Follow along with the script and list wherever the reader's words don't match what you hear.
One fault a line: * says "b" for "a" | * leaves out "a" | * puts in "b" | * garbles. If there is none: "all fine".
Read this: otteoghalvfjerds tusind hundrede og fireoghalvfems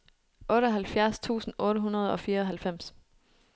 * puts in "otte"